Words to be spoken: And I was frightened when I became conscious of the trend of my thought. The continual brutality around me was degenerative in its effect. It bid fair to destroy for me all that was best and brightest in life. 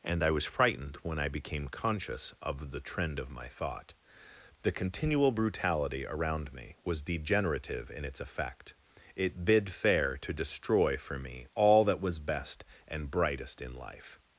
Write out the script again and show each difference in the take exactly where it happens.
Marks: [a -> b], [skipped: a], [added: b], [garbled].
And I was frightened when I became conscious of the trend of my thought. The continual brutality around me was degenerative in its effect. It bid fair to destroy for me all that was best and brightest in life.